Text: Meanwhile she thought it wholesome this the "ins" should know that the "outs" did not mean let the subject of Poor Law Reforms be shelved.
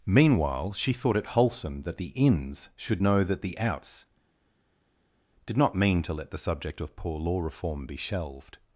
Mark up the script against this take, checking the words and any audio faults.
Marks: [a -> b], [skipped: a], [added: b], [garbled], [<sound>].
Meanwhile she thought it wholesome [this -> that] the "ins" should know that the "outs" did not mean [added: to] let the subject of Poor Law [Reforms -> Reform] be shelved.